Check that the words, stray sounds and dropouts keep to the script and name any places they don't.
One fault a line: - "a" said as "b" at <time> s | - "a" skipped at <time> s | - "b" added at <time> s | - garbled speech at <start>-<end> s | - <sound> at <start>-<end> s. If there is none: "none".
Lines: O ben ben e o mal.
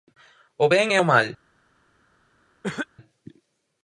- "ben" skipped at 0.9 s
- cough at 2.6-2.9 s